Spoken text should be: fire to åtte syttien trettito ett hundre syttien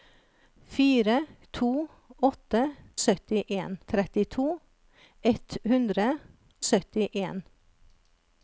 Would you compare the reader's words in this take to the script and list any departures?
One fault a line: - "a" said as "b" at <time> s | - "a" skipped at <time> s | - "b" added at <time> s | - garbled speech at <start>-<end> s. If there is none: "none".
none